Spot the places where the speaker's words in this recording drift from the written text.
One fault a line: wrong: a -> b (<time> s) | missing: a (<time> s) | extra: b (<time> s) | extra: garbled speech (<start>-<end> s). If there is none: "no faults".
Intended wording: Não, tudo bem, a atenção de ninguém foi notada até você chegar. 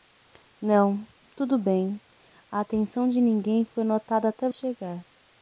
missing: você (4.5 s)